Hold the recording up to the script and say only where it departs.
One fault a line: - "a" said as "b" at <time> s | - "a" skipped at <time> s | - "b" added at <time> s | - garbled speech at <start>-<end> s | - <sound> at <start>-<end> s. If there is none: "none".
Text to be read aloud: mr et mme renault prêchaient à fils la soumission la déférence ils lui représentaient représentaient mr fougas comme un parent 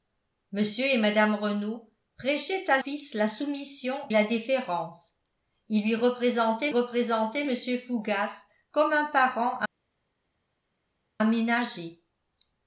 none